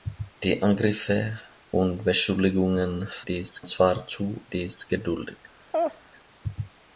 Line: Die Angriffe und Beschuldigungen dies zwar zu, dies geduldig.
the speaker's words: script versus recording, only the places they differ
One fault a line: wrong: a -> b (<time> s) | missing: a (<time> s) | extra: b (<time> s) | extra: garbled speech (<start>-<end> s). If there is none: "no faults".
no faults